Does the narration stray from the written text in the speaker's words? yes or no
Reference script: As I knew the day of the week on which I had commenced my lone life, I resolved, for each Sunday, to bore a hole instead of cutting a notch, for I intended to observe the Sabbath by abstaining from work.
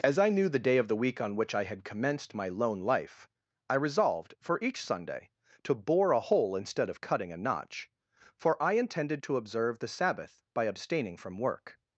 no